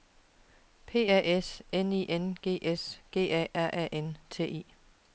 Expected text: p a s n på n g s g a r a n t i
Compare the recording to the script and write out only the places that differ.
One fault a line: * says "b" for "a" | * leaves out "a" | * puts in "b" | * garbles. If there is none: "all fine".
* says "i" for "på"